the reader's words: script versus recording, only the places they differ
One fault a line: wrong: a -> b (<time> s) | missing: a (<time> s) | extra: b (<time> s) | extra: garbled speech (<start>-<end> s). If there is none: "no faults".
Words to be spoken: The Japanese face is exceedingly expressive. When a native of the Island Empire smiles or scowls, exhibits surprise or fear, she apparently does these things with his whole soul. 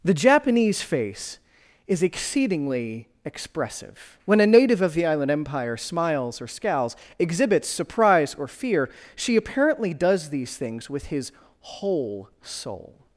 no faults